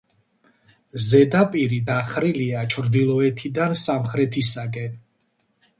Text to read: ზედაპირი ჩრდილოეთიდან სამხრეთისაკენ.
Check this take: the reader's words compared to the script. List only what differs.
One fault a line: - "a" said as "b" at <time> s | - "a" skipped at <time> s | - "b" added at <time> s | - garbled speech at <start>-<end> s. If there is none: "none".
- "დახრილია" added at 1.9 s